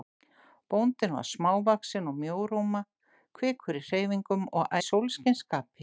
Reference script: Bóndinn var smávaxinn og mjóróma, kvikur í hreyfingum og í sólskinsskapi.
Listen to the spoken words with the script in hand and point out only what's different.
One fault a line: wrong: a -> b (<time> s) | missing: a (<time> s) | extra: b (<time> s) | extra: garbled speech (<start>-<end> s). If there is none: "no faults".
no faults